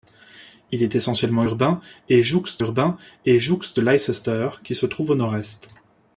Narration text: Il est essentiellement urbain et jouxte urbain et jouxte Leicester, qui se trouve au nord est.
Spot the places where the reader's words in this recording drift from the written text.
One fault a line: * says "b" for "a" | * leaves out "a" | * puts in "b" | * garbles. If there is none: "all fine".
all fine